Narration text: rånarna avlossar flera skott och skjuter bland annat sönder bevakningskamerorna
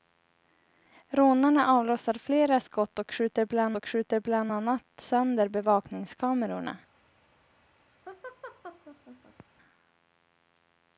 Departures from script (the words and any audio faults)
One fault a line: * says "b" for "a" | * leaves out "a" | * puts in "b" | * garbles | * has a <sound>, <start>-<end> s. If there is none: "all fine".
* puts in "och skjuter bland"
* has a laugh, 8.1-9.5 s